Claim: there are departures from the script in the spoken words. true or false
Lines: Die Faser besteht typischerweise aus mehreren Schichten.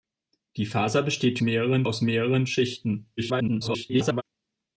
true